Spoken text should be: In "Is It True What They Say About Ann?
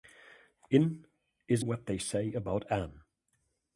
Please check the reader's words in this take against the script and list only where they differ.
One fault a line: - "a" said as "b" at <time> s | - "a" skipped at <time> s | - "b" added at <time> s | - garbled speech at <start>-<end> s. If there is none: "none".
- "It True" skipped at 1.6 s